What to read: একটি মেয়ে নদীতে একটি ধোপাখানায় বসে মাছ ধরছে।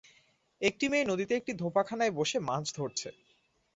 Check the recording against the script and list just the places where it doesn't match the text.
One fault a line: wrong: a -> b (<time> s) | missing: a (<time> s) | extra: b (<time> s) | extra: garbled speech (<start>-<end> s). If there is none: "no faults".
no faults